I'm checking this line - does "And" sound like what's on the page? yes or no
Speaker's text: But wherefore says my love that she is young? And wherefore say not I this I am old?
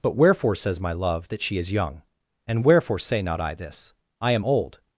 yes